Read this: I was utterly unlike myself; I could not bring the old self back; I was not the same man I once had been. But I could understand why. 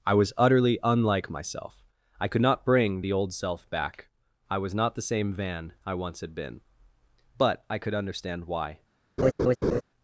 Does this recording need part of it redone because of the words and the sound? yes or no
yes